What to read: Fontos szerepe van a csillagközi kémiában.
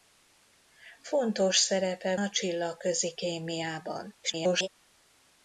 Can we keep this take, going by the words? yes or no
no